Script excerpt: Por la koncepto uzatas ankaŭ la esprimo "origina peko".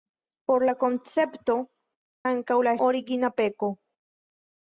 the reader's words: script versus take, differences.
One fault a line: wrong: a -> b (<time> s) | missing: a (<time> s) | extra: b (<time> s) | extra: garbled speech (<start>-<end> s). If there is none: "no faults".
missing: uzatas (1.6 s)
missing: esprimo (2.7 s)